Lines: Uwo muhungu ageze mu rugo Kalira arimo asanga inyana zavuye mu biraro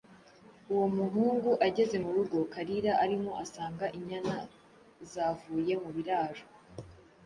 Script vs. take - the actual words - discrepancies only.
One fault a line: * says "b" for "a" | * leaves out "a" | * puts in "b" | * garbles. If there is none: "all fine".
all fine